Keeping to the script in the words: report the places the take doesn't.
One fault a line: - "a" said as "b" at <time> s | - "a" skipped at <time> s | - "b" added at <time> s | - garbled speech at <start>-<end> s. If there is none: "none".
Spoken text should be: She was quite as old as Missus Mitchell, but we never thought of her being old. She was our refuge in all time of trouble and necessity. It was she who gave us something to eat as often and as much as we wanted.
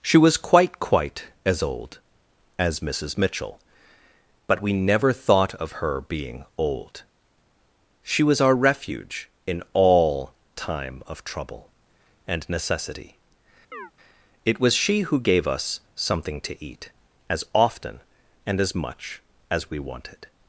- "quite" added at 0.8 s